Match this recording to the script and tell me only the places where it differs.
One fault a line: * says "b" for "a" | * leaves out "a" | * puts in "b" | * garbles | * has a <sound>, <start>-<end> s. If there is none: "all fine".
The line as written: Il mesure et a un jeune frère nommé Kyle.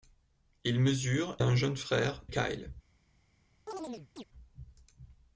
* leaves out "et"
* leaves out "nommé"
* has a chirp, 3.7-4.2 s